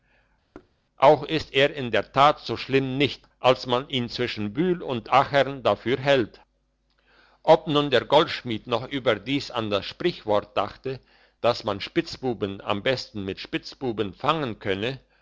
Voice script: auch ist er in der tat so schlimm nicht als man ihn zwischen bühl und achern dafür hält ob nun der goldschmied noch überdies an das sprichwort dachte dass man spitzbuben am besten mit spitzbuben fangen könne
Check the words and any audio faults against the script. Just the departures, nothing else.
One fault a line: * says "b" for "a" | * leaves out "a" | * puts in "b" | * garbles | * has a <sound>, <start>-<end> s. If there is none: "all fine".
* has a thud, 0.5-0.8 s